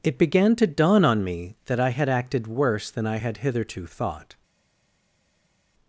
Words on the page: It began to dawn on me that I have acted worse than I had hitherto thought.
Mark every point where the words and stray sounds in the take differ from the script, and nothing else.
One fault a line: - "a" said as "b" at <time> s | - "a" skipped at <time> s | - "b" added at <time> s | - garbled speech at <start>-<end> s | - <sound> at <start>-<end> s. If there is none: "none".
- "have" said as "had" at 1.9 s